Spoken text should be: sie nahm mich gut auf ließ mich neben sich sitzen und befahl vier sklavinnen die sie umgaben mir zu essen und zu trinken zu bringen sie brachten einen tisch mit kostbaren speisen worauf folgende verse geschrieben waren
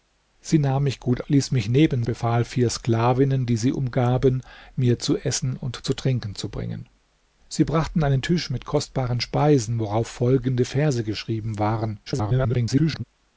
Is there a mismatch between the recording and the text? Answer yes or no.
yes